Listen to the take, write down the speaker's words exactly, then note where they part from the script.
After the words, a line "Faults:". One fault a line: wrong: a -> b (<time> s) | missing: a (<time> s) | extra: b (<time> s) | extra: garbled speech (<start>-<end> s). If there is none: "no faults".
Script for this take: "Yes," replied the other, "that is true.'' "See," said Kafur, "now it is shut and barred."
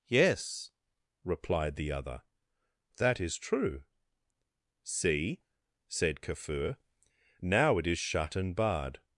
"Yes," replied the other, "that is true.'' "See," said Kafur, "now it is shut and barred."
Faults:
no faults